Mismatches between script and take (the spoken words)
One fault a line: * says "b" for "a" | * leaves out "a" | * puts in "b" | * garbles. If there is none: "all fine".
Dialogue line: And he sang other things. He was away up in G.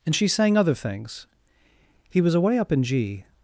* says "she" for "he"